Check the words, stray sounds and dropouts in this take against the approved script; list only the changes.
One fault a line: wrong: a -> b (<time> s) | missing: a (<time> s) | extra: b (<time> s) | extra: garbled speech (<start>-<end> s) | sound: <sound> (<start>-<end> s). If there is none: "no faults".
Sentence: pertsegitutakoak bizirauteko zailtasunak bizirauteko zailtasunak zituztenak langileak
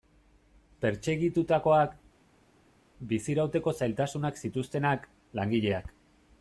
missing: bizirauteko zailtasunak (4.4 s)